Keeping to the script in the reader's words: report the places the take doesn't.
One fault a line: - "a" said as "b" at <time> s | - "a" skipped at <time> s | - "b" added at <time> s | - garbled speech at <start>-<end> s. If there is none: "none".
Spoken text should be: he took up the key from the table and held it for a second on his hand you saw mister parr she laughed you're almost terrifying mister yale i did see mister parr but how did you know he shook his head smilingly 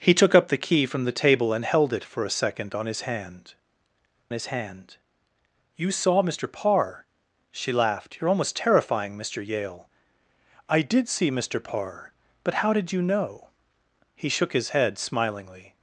- "his hand" added at 4.3 s